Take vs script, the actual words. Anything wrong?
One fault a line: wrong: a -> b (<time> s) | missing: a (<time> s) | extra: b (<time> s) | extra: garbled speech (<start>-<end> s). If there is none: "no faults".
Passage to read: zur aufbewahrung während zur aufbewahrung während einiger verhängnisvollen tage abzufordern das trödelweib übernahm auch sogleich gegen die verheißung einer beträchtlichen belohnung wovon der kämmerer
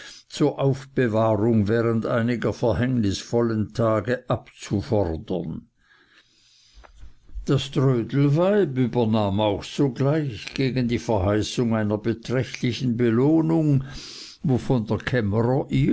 missing: zur aufbewahrung während (2.0 s)